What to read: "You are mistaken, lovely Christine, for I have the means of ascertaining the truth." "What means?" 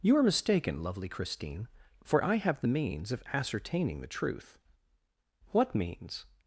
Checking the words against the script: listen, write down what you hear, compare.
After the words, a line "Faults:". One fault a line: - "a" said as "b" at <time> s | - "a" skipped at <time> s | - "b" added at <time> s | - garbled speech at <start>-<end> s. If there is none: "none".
"You are mistaken, lovely Christine, for I have the means of ascertaining the truth." "What means?"
Faults:
none